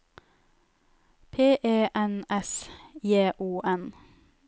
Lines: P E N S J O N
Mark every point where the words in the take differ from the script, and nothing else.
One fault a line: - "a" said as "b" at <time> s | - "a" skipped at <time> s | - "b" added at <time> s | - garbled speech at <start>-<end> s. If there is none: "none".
none